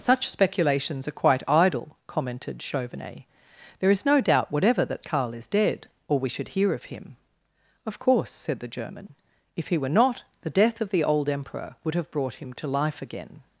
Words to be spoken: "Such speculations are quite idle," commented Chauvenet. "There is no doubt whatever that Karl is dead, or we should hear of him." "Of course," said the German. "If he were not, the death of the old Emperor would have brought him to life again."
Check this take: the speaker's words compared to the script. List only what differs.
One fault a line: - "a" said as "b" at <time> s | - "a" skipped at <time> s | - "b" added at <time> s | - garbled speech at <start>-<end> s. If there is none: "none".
none